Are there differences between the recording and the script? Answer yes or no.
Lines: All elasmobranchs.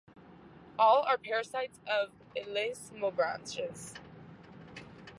yes